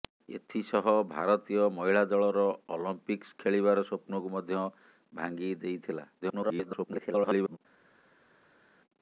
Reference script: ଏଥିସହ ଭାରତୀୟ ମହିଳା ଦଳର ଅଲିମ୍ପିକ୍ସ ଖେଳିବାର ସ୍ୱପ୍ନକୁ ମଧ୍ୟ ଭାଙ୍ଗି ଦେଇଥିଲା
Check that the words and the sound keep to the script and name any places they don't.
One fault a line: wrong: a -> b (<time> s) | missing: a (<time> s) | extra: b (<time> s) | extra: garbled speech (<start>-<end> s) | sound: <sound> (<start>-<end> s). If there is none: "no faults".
extra: garbled speech (6.2-7.6 s)